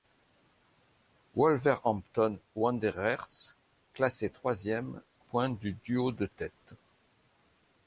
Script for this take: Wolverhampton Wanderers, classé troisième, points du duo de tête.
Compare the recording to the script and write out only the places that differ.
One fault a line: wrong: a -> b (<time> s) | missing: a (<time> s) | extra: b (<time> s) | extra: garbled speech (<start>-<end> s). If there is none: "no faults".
no faults